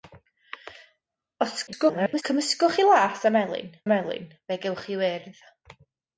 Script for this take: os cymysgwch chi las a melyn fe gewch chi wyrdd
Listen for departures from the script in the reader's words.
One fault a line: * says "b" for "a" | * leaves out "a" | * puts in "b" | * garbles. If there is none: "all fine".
* garbles
* puts in "melyn"